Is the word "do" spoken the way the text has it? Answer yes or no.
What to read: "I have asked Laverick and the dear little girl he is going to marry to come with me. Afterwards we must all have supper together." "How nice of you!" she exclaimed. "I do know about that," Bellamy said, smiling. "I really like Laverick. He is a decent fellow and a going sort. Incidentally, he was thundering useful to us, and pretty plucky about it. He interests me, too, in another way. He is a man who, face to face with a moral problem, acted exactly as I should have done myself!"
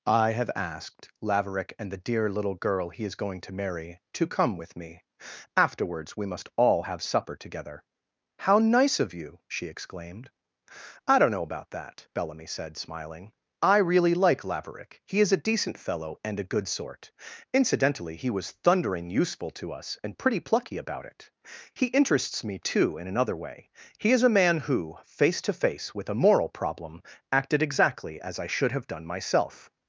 no